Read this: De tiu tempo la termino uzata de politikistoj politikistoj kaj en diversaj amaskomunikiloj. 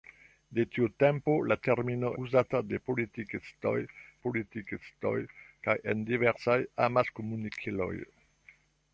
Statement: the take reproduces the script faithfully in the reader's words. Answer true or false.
true